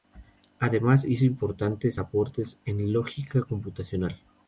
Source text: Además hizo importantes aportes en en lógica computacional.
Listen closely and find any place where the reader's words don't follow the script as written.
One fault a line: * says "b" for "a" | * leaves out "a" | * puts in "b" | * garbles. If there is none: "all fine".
* leaves out "en"